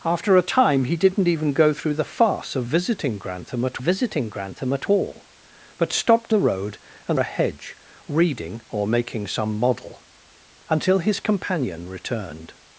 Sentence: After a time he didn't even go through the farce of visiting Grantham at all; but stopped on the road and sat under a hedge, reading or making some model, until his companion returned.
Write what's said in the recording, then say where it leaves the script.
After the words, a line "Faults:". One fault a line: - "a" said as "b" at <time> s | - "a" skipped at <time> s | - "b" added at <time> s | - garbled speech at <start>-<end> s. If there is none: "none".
After a time he didn't even go through the farce of visiting Grantham at visiting Grantham at all; but stopped the road and a hedge, reading or making some model, until his companion returned.
Faults:
- "visiting Grantham at" added at 3.8 s
- "on" skipped at 6.3 s
- "sat under" skipped at 7.2 s